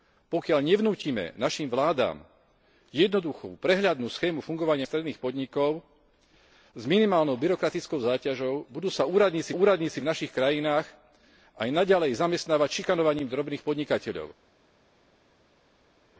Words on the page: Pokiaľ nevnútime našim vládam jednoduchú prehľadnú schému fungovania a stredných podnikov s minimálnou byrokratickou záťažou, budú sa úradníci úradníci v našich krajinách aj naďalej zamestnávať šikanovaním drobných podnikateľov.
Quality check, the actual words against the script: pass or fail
pass